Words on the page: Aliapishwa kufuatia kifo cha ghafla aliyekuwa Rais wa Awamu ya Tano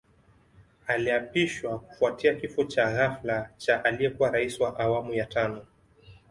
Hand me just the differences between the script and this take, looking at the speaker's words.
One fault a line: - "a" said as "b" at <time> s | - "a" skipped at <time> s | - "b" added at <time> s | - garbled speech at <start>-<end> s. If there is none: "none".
- "cha" added at 3.6 s